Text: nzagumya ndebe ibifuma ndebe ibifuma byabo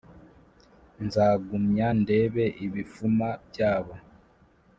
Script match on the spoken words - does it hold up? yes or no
no